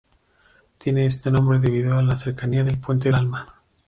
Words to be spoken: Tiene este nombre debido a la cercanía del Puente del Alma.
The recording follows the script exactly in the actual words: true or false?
false